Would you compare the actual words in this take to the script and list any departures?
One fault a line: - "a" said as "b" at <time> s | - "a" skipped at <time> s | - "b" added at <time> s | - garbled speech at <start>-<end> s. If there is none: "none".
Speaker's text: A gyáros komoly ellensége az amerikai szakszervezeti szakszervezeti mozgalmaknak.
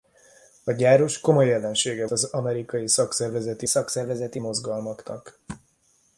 none